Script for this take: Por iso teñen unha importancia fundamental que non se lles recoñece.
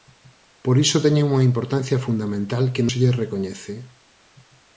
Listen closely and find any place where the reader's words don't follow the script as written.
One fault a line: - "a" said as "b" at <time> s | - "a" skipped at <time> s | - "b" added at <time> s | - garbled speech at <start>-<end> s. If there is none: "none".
- "non" skipped at 2.9 s